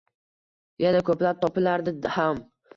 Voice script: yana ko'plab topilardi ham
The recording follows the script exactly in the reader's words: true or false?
true